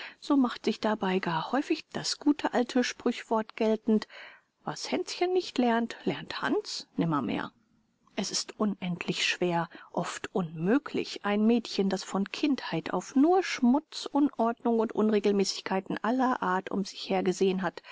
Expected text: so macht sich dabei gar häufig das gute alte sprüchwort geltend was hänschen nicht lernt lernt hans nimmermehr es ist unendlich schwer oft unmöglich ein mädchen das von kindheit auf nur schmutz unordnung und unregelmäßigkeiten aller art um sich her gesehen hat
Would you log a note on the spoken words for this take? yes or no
no